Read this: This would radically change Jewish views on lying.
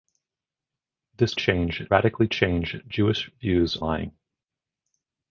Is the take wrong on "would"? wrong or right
wrong